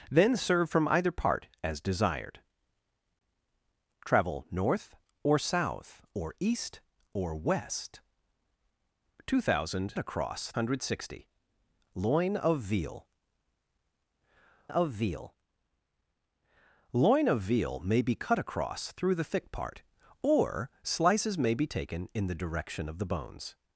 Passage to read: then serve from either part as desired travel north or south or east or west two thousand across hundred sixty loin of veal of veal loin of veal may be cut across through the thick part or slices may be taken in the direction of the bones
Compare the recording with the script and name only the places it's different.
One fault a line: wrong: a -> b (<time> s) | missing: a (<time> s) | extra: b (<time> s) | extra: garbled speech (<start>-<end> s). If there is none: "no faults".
no faults